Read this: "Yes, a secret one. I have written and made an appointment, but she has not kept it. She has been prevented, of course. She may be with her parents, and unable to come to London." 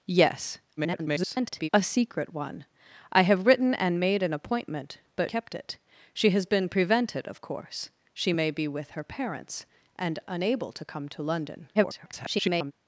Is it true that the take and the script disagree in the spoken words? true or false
true